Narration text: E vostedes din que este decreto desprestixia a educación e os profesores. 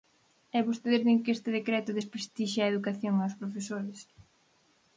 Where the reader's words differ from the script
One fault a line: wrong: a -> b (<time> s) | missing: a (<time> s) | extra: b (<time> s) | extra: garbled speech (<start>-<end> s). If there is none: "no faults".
no faults